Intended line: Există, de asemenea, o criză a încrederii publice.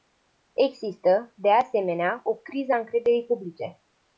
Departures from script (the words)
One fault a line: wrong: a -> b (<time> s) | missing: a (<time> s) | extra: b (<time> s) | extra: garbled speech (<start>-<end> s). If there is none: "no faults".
no faults